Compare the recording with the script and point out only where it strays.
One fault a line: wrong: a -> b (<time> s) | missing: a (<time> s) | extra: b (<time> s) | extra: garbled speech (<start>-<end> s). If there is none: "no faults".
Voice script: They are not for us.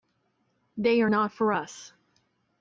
no faults